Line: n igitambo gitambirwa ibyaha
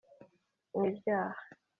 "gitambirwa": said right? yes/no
no